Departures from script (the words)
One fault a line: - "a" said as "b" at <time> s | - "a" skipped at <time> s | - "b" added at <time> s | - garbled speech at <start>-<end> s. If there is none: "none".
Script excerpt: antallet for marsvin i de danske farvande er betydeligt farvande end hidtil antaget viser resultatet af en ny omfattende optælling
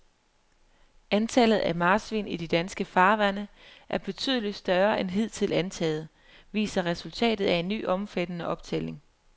- "for" said as "af" at 1.6 s
- "farvande" said as "større" at 4.5 s